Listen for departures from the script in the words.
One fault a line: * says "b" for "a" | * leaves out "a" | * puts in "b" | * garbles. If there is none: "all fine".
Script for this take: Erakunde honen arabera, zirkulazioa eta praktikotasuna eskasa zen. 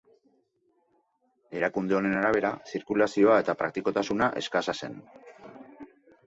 all fine